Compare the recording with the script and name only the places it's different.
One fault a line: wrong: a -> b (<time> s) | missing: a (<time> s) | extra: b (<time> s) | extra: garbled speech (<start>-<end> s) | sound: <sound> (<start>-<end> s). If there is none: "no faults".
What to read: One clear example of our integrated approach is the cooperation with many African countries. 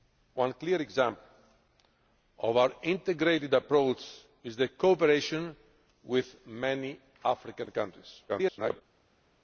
extra: garbled speech (8.3-8.8 s)